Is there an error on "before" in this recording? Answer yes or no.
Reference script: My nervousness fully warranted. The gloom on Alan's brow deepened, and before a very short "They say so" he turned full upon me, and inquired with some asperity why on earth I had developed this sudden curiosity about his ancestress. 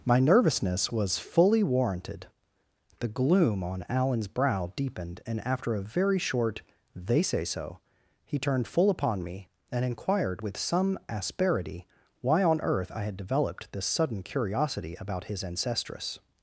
yes